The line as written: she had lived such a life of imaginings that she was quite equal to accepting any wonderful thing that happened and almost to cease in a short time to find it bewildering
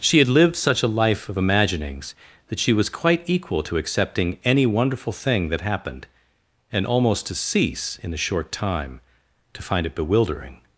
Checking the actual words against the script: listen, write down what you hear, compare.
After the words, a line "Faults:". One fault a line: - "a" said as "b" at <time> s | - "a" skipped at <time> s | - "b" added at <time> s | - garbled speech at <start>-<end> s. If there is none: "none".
she had lived such a life of imaginings that she was quite equal to accepting any wonderful thing that happened and almost to cease in a short time to find it bewildering
Faults:
none